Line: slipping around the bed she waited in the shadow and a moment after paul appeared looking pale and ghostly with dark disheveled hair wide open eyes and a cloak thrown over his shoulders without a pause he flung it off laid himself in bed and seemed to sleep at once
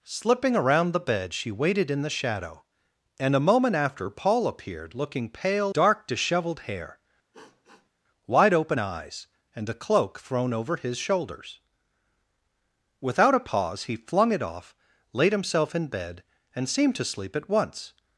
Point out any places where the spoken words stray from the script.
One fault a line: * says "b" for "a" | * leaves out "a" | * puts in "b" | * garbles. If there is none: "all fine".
* leaves out "and ghostly with"